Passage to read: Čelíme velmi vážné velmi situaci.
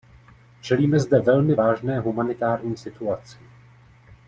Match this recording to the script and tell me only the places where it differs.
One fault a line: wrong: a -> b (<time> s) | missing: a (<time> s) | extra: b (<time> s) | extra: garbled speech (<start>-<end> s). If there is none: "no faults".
extra: zde (1.0 s)
wrong: velmi -> humanitární (2.0 s)